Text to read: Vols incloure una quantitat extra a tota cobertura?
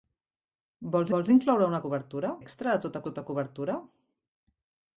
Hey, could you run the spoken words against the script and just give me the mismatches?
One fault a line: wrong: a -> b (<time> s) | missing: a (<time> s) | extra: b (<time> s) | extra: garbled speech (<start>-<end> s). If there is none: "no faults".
extra: vols (1.1 s)
wrong: quantitat -> cobertura (1.9 s)
extra: tota (3.1 s)